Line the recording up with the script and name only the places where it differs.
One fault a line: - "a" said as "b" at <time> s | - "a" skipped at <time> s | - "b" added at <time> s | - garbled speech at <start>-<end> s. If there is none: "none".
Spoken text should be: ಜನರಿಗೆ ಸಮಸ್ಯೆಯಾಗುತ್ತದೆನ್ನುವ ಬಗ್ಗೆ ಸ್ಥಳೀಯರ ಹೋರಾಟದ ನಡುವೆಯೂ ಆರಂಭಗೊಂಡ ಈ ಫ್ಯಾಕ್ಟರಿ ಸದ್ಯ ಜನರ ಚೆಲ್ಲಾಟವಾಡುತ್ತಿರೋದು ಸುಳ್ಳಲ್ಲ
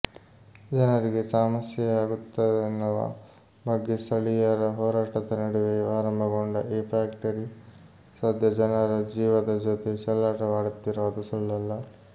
- "ಜೀವದ ಜೊತೆ" added at 9.1 s